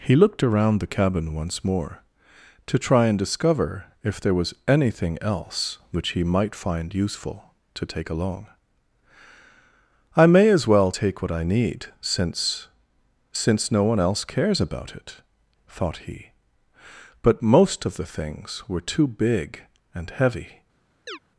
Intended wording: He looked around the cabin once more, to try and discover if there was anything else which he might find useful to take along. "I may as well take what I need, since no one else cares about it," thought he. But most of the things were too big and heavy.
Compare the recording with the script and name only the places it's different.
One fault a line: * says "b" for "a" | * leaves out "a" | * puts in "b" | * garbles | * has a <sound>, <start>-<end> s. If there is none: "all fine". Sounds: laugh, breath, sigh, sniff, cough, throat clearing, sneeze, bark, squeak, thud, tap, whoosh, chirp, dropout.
* puts in "since"
* has a chirp, 21.1-21.2 s